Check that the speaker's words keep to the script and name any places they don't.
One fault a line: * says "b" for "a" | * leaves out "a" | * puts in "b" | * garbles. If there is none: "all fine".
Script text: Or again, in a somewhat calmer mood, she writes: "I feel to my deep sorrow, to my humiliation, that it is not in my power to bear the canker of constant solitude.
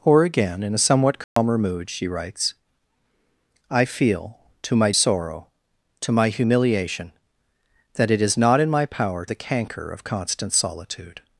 * leaves out "deep"
* leaves out "to bear"